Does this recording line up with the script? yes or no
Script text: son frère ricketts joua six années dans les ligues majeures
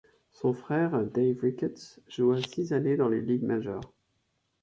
no